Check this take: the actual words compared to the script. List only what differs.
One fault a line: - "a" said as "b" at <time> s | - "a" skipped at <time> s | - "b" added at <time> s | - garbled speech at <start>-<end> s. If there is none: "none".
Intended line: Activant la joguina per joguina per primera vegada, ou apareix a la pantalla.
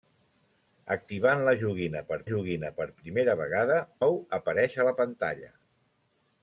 none